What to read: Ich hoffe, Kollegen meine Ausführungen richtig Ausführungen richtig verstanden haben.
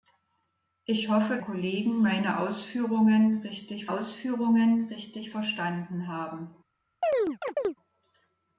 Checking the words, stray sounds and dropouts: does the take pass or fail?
fail